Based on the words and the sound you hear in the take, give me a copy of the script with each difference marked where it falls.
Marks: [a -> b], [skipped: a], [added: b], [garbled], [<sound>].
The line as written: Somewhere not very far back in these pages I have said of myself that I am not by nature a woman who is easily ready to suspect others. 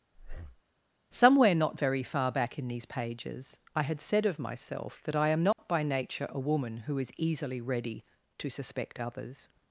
[breath] Somewhere not very far back in these pages I [have -> had] said of myself that I am not [dropout] by nature a woman who is easily ready to suspect others.